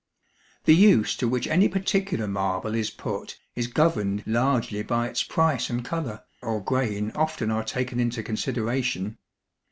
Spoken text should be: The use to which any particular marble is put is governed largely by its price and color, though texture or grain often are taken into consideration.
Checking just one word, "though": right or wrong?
wrong